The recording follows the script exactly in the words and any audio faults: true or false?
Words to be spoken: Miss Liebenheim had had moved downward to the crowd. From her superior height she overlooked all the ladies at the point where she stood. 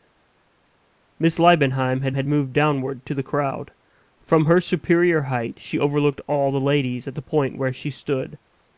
true